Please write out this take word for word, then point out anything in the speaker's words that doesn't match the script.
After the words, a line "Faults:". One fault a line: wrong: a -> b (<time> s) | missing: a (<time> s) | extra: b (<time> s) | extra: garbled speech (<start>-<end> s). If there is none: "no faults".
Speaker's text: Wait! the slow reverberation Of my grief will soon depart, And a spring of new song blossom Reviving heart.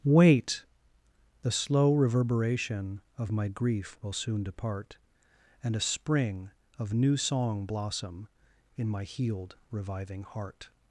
Wait! the slow reverberation Of my grief will soon depart, And a spring of new song blossom In my healed, reviving heart.
Faults:
extra: In my healed (8.8 s)